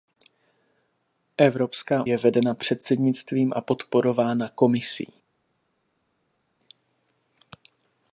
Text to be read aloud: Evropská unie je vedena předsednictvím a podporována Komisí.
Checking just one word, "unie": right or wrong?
wrong